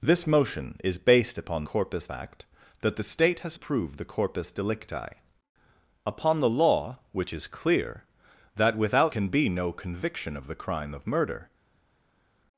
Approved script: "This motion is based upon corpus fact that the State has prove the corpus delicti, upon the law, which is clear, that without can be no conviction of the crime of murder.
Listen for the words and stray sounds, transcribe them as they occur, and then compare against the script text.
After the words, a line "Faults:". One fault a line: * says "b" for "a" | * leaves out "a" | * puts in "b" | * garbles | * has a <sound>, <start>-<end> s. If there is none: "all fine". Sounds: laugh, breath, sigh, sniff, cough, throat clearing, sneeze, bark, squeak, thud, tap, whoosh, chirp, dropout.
"This motion is based upon corpus fact that the State has prove the corpus delicti, upon the law, which is clear, that without can be no conviction of the crime of murder.
Faults:
all fine